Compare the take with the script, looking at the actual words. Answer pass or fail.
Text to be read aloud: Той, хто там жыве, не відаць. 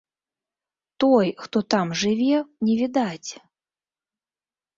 pass